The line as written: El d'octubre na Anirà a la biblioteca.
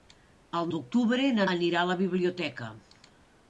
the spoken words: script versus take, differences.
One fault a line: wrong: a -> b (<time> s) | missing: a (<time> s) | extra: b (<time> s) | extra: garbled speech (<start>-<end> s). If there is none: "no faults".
no faults